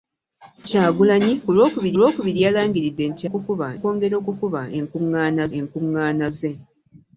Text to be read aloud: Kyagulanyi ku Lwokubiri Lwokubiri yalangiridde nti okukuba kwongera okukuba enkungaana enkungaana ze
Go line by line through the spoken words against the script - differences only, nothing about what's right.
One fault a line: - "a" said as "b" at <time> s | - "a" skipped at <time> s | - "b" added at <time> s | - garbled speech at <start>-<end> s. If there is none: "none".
none